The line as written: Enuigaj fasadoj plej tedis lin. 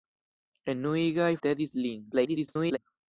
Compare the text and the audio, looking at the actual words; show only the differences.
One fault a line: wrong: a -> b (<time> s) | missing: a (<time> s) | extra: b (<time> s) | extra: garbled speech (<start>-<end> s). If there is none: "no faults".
missing: fasadoj plej (1.3 s)
extra: garbled speech (2.1-2.8 s)